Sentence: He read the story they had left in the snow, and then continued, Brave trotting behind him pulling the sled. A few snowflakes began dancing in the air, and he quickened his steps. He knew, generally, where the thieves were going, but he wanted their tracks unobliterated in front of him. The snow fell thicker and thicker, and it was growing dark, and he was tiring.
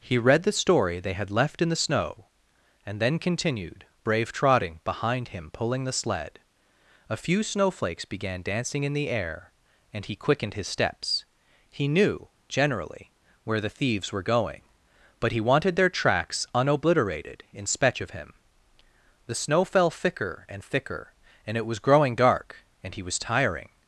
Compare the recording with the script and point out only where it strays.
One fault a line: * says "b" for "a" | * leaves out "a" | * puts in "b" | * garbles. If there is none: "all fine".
* says "spech" for "front"